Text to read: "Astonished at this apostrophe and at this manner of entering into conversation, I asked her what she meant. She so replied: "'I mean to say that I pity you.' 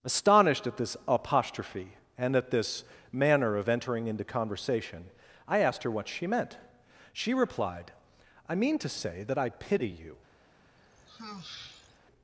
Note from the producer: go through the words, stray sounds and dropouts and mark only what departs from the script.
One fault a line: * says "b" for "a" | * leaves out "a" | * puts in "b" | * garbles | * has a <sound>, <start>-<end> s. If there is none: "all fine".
* leaves out "so"
* has a sigh, 10.8-12.0 s